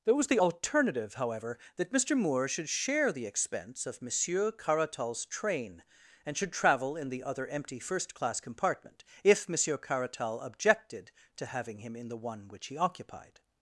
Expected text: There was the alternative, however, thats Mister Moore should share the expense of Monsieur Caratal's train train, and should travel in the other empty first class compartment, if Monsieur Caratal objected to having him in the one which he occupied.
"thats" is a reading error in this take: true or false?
true